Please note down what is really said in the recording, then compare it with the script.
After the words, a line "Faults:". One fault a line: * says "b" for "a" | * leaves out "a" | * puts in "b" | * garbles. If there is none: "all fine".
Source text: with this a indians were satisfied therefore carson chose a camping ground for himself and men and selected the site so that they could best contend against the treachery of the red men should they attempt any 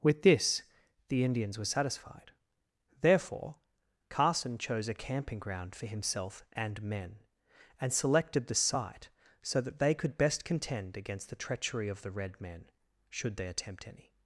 with this the indians were satisfied therefore carson chose a camping ground for himself and men and selected the site so that they could best contend against the treachery of the red men should they attempt any
Faults:
* says "the" for "a"